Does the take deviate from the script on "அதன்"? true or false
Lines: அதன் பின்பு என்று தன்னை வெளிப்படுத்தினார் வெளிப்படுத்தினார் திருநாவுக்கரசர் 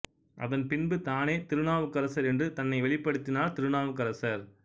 false